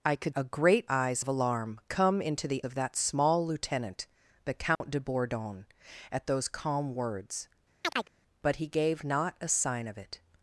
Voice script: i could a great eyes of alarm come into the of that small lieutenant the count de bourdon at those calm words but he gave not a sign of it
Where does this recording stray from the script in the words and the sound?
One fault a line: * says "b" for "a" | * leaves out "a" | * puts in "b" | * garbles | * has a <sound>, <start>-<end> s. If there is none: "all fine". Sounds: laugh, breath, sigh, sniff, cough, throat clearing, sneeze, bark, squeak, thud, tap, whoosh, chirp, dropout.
* has a dropout, 4.8-4.8 s
* has a chirp, 7.8-8.1 s